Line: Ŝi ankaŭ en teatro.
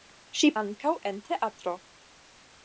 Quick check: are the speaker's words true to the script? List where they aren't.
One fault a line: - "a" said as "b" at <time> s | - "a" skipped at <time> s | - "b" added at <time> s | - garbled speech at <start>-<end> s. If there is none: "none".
none